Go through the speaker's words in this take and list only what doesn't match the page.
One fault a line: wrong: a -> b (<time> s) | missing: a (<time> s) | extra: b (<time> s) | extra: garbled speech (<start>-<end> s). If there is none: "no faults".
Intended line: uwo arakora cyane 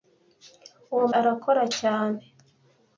no faults